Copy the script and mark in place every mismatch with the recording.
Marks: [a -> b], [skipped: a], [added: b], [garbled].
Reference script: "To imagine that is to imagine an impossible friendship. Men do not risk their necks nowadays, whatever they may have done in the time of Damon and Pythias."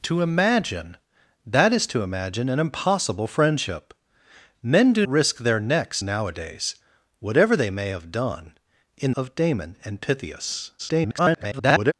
"To imagine that is to imagine an impossible friendship. Men do [skipped: not] risk their necks nowadays, whatever they may have done in [skipped: the time] of Damon and Pythias." [garbled]